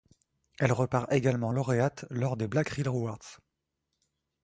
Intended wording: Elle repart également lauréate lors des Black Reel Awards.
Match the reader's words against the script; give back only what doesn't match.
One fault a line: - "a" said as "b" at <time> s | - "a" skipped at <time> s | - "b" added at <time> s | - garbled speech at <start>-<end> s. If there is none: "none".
none